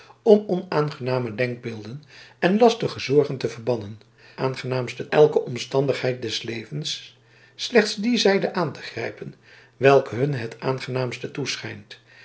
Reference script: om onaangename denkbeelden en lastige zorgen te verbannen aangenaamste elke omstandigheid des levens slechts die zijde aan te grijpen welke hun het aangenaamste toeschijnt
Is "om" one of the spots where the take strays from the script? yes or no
no